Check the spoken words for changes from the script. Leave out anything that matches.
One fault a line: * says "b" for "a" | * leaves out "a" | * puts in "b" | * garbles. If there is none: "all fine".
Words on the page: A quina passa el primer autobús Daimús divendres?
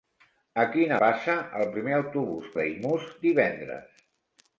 all fine